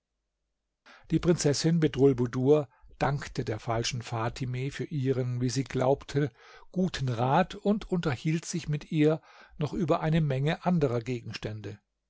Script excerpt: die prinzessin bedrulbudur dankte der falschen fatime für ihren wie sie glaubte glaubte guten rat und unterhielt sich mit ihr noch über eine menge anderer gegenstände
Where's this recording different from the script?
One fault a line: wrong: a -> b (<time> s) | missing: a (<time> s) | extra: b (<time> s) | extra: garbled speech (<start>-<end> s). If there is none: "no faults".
missing: glaubte (6.3 s)